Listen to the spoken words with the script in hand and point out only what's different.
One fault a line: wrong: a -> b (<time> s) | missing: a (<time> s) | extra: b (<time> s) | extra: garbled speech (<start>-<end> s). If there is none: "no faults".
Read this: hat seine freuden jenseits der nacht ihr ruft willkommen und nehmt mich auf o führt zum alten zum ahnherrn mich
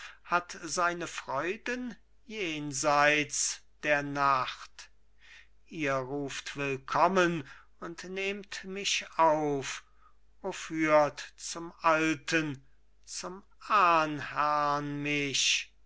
no faults